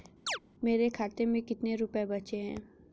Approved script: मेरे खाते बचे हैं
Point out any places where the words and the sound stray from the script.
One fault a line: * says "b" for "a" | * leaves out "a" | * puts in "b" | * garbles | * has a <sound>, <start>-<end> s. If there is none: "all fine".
* has a chirp, 0.3-0.4 s
* puts in "में कितने रुपये"